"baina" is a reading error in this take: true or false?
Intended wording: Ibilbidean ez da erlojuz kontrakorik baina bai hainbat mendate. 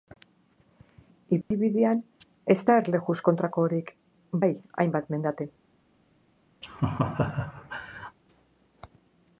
true